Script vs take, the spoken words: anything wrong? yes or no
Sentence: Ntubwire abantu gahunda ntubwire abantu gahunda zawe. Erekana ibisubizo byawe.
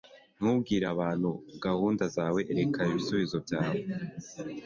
yes